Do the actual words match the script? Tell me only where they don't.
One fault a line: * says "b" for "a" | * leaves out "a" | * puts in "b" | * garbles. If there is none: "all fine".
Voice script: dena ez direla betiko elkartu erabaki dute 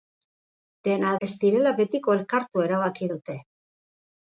all fine